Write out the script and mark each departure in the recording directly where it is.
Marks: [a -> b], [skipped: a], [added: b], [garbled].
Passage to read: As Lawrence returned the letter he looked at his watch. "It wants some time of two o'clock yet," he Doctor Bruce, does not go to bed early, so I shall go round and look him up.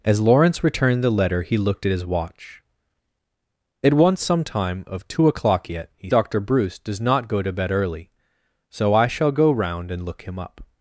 As Lawrence returned the letter he looked at his watch. "It wants some time of two o'clock yet," he Doctor Bruce, does not go to bed early, so I shall go round and look him up.